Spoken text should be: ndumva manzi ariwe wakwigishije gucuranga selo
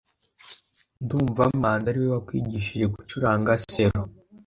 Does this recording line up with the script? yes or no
yes